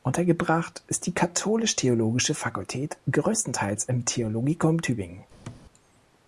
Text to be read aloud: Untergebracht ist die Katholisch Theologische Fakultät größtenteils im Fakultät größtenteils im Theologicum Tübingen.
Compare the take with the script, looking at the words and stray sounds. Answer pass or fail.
fail